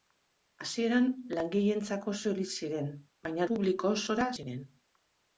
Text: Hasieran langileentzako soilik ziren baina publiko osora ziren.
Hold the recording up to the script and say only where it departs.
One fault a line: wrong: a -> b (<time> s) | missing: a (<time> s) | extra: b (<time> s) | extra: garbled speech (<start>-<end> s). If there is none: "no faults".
no faults